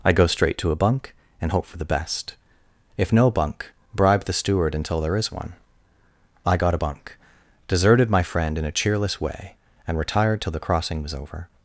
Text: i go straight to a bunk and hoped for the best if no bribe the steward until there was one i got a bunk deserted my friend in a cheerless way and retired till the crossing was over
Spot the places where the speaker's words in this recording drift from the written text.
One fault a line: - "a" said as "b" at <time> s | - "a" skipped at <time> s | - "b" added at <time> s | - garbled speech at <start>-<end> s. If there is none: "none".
- "hoped" said as "hope" at 1.5 s
- "bunk" added at 3.3 s
- "was" said as "is" at 5.2 s